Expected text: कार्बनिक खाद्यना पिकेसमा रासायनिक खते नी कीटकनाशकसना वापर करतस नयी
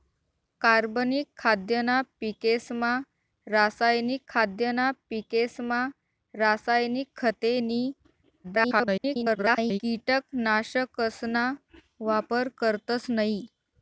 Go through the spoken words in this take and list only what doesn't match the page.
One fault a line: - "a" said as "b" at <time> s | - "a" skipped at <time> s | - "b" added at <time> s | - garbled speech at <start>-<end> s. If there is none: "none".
- "खाद्यना पिकेसमा रासायनिक" added at 4.3 s
- garbled speech at 8.4-9.8 s